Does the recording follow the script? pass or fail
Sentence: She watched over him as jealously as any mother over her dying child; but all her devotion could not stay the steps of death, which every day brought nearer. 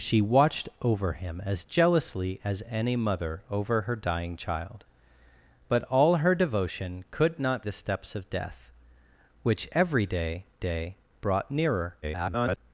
fail